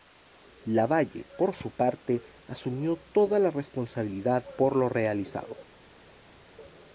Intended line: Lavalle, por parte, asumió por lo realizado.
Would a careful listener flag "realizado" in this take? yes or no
no